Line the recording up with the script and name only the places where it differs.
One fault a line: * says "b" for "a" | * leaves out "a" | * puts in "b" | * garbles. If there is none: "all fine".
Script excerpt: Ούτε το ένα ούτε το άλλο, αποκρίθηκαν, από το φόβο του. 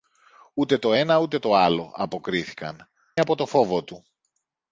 all fine